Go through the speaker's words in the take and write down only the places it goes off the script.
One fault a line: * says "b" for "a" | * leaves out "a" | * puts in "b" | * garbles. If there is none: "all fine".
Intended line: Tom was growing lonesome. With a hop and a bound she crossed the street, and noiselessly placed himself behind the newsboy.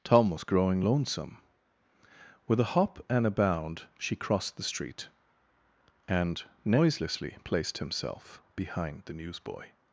all fine